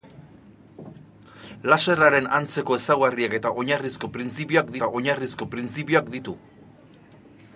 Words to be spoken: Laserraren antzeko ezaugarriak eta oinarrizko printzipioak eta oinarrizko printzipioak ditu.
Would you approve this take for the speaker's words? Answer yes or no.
yes